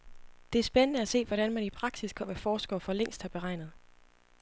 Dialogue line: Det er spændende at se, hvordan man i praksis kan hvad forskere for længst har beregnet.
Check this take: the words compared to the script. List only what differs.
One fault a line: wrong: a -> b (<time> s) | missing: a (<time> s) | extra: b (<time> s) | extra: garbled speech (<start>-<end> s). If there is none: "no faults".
no faults